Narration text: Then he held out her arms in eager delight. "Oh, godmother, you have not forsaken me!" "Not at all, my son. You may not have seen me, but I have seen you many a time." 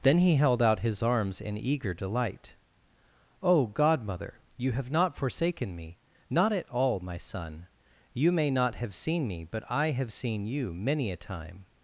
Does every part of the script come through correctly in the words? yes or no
no